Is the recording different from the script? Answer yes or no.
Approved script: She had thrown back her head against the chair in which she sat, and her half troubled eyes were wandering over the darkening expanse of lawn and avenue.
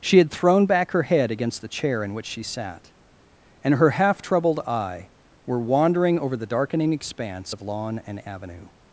yes